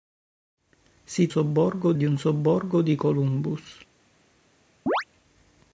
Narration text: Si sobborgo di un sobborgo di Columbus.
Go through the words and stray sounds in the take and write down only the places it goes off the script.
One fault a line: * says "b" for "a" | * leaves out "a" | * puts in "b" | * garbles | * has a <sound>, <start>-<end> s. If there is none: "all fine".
* has a chirp, 4.9-5.0 s